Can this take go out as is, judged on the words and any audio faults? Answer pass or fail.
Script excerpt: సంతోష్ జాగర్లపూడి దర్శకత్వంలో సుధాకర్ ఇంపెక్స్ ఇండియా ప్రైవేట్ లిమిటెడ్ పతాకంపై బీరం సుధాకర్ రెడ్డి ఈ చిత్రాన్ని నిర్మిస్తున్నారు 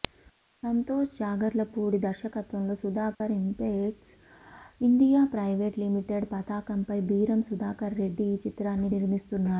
fail